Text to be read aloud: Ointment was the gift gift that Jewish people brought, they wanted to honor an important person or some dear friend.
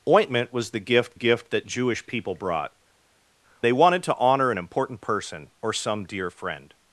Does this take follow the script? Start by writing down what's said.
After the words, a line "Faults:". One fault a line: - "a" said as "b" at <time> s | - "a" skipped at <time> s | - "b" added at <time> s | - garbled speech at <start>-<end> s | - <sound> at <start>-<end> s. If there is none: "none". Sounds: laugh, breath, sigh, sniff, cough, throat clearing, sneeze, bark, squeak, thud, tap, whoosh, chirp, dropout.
Ointment was the gift gift that Jewish people brought, they wanted to honor an important person or some dear friend.
Faults:
none